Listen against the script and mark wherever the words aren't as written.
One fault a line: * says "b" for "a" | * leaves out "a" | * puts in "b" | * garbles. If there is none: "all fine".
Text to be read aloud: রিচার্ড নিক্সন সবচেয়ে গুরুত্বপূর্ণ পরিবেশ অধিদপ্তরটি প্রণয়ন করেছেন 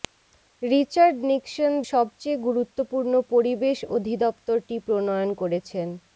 all fine